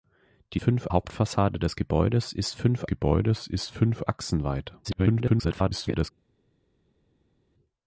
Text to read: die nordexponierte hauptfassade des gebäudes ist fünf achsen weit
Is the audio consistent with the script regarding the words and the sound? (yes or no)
no